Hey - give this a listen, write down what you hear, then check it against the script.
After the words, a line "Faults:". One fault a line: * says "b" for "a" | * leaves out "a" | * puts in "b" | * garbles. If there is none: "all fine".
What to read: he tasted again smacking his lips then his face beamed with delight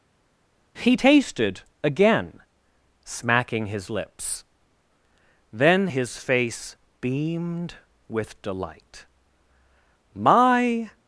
he tasted again smacking his lips then his face beamed with delight my
Faults:
* puts in "my"